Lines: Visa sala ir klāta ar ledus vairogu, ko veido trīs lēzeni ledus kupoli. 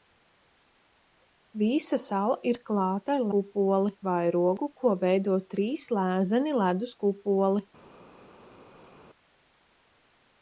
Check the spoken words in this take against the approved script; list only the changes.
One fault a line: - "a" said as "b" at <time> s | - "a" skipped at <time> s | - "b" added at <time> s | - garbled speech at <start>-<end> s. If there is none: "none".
- "ledus" said as "kupoli" at 3.4 s